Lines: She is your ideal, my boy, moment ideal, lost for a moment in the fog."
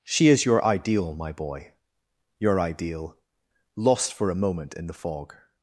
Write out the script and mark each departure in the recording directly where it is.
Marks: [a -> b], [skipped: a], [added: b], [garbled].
She is your ideal, my boy, [moment -> your] ideal, lost for a moment in the fog."